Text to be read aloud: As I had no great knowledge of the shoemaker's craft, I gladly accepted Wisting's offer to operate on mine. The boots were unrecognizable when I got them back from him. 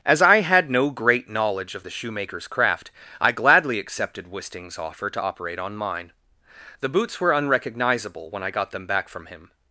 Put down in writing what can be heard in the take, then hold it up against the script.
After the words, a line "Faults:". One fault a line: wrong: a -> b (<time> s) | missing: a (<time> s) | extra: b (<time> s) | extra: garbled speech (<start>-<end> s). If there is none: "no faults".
As I had no great knowledge of the shoemaker's craft, I gladly accepted Wisting's offer to operate on mine. The boots were unrecognizable when I got them back from him.
Faults:
no faults